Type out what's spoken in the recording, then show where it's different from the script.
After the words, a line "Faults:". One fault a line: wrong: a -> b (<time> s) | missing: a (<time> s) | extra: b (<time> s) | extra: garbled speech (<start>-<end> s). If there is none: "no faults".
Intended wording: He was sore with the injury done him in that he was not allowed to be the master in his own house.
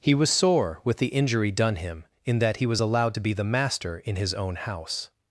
He was sore with the injury done him in that he was allowed to be the master in his own house.
Faults:
missing: not (2.8 s)